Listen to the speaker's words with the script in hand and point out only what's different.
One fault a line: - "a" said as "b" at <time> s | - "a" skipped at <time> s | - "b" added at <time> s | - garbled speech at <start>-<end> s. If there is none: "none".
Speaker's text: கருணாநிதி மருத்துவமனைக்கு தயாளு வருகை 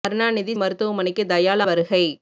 none